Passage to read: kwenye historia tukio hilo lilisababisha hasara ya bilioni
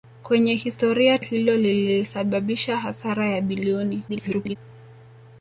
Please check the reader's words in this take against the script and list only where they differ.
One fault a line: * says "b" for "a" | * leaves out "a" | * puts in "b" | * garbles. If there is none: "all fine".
* leaves out "tukio"
* garbles